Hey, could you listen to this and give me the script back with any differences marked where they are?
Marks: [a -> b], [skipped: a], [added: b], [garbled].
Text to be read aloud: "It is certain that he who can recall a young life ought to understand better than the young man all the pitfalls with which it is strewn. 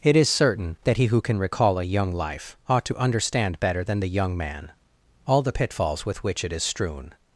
"It is certain that he who can recall a young life ought to understand better than the young man all the pitfalls with which it is strewn.